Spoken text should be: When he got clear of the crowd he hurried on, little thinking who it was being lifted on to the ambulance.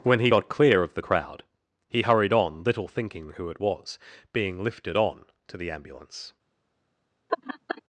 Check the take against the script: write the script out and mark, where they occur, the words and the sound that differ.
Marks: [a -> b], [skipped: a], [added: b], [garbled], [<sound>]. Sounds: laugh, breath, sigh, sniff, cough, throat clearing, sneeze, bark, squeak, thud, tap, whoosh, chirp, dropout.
When he got clear of the crowd he hurried on, little thinking who it was being lifted on to the ambulance. [laugh]